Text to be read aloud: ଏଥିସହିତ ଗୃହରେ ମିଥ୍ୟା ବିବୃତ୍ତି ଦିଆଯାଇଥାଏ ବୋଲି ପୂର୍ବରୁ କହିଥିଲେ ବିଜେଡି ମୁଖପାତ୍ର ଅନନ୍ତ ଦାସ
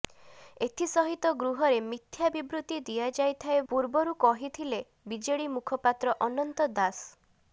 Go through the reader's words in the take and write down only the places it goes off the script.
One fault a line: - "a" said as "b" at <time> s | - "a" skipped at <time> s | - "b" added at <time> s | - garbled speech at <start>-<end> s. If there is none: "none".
- "ବୋଲି" skipped at 3.6 s